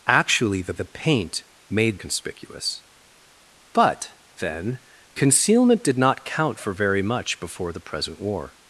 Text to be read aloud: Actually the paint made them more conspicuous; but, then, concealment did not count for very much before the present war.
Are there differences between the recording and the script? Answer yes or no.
yes